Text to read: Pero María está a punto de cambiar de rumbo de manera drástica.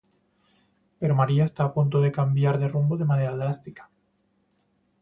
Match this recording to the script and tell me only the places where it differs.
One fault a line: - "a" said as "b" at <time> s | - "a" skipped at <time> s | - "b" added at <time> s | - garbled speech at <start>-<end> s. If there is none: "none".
none